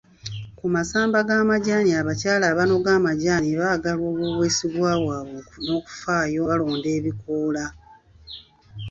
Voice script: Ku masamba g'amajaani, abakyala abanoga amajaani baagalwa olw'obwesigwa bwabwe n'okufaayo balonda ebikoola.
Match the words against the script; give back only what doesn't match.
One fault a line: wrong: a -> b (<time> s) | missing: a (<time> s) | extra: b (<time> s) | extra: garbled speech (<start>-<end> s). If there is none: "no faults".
no faults